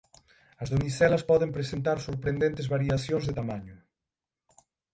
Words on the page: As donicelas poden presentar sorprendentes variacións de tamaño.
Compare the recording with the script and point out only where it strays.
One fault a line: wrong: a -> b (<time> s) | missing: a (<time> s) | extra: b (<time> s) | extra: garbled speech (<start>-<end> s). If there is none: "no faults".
no faults